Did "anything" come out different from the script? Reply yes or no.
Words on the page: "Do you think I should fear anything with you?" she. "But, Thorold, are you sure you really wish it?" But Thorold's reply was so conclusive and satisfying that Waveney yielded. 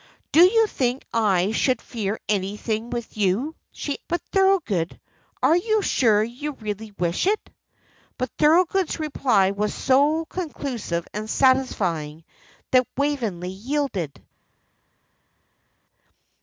no